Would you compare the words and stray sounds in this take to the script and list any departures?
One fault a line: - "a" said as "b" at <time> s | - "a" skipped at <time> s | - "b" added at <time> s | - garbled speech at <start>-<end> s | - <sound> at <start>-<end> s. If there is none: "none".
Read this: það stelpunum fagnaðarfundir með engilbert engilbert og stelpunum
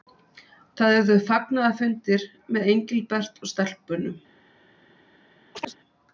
- "stelpunum" said as "urðu" at 1.0 s
- "engilbert" skipped at 3.4 s
- chirp at 5.5-5.8 s